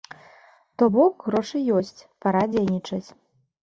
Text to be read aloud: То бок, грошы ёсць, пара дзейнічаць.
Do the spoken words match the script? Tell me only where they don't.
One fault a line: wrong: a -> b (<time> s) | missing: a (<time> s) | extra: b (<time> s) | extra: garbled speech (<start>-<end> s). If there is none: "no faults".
no faults